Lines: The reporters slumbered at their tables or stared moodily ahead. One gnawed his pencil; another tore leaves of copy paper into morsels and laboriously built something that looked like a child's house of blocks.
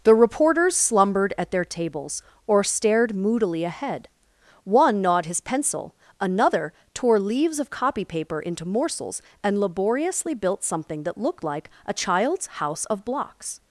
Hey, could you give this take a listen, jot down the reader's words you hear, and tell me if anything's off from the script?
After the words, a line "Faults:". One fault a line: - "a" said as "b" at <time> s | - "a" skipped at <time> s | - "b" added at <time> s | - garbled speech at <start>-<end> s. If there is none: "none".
The reporters slumbered at their tables or stared moodily ahead. One gnawed his pencil; another tore leaves of copy paper into morsels and laboriously built something that looked like a child's house of blocks.
Faults:
none